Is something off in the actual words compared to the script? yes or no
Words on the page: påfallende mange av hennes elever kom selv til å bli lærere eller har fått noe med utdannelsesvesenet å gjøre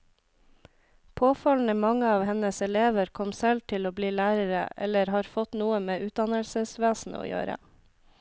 no